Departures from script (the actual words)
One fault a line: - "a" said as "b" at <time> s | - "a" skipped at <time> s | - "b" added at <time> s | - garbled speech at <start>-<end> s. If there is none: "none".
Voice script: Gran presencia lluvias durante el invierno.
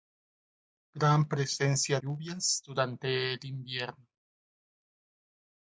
none